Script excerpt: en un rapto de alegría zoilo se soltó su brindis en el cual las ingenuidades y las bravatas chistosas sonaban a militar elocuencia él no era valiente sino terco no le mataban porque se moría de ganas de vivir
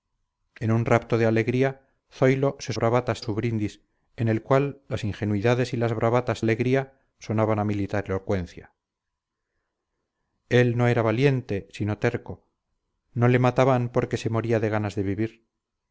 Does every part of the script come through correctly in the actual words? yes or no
no